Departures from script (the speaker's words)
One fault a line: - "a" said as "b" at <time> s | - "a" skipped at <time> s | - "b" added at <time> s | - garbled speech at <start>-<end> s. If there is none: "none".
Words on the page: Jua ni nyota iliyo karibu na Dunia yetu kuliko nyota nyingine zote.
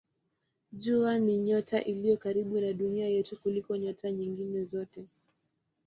none